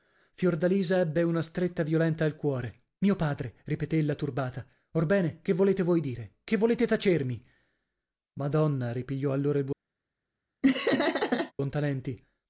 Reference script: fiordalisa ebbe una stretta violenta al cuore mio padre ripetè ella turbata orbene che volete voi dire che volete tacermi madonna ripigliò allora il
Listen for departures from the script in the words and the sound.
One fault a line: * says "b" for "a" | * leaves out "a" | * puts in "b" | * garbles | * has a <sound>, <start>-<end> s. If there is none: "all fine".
* has a laugh, 10.6-11.5 s